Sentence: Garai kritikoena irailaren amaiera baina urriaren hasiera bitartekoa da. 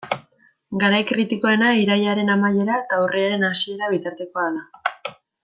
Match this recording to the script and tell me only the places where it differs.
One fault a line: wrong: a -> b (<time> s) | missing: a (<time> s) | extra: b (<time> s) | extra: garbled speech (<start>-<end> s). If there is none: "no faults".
wrong: baina -> eta (2.8 s)